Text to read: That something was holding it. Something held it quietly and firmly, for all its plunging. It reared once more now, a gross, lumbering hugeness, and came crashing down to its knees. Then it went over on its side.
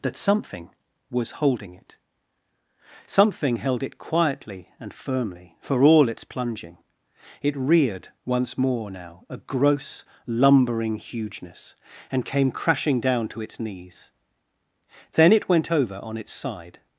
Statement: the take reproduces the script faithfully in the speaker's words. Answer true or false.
true